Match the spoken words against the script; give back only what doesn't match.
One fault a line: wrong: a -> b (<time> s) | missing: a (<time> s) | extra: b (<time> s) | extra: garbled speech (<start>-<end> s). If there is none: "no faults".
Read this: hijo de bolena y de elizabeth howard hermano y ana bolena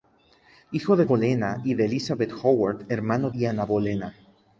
no faults